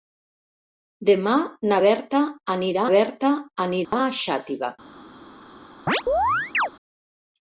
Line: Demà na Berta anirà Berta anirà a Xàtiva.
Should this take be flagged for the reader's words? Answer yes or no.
no